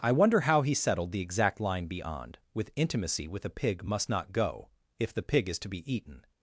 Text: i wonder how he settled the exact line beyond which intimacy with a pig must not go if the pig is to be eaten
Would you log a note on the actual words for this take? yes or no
yes